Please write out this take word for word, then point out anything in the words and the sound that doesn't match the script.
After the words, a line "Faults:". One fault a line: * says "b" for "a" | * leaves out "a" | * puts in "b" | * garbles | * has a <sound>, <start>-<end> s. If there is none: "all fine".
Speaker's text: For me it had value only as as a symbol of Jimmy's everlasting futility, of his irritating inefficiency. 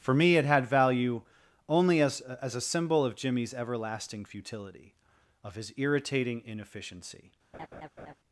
For me it had value only as as a symbol of Jimmy's everlasting futility, of his irritating inefficiency.
Faults:
* has a laugh, 7.5-8.1 s